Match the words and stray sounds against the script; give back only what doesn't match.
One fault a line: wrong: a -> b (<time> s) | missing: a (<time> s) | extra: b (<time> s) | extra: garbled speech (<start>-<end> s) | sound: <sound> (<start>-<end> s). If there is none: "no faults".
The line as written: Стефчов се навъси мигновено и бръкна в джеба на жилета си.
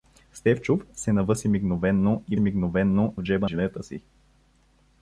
wrong: бръкна -> мигновено (2.4 s)
missing: на (3.5 s)